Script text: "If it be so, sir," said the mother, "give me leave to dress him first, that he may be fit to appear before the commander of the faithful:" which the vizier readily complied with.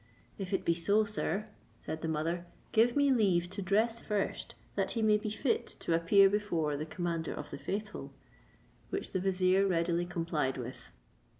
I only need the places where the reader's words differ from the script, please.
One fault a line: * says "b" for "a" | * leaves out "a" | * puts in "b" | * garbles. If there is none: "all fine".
* leaves out "him"